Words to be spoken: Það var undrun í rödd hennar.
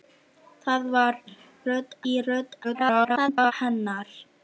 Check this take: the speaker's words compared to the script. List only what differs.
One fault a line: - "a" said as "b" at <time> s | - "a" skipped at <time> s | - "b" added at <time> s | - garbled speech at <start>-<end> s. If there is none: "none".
- "undrun" said as "rödd" at 1.7 s
- garbled speech at 2.6-3.5 s